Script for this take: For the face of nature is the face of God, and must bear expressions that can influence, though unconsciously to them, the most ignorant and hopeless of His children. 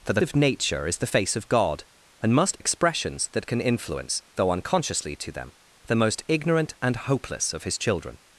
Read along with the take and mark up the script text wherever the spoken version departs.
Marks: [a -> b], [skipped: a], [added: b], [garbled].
For the [skipped: face] of nature is the face of God, and must [skipped: bear] expressions that can influence, though unconsciously to them, the most ignorant and hopeless of His children.